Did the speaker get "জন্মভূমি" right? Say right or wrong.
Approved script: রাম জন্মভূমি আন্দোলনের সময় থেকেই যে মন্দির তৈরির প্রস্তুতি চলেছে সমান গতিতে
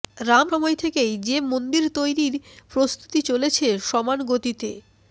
wrong